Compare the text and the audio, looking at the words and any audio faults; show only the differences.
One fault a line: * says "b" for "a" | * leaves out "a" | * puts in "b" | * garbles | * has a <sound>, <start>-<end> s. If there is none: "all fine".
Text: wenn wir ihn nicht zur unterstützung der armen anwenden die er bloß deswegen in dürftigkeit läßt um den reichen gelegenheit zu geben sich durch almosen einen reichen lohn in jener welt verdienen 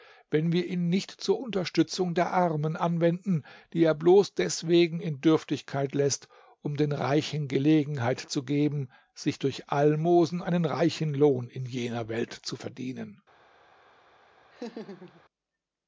* puts in "zu"
* has a laugh, 14.5-15.2 s